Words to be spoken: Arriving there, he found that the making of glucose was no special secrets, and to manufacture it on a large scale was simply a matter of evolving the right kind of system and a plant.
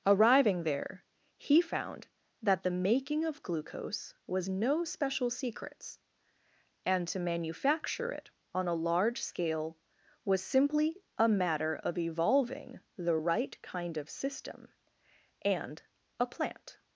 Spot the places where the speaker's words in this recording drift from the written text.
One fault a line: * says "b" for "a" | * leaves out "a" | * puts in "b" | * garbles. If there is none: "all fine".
all fine